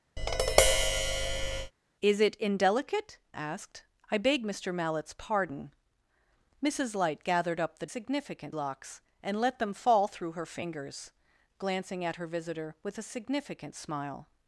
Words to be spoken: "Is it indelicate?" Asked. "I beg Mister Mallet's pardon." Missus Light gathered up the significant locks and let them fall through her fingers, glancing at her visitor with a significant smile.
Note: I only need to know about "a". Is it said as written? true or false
true